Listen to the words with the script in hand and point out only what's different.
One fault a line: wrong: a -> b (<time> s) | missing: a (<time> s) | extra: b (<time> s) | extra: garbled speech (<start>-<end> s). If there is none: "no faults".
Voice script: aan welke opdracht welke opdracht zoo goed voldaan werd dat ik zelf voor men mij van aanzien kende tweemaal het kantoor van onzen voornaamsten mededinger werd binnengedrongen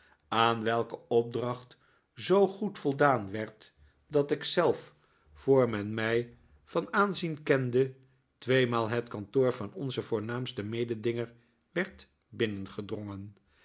missing: welke opdracht (1.8 s)